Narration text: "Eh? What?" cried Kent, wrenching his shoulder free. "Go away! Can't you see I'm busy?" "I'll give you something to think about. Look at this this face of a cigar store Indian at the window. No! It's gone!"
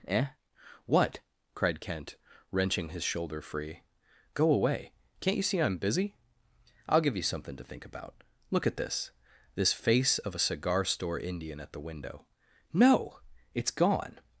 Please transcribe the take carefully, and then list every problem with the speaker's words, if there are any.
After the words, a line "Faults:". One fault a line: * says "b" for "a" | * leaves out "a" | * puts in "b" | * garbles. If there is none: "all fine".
"Eh? What?" cried Kent, wrenching his shoulder free. "Go away! Can't you see I'm busy?" "I'll give you something to think about. Look at this this face of a cigar store Indian at the window. No! It's gone!"
Faults:
all fine